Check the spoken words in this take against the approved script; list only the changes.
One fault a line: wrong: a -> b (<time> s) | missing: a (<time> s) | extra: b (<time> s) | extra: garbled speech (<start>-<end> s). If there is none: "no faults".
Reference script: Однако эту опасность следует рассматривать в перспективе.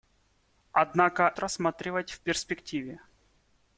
missing: эту опасность следует (1.3 s)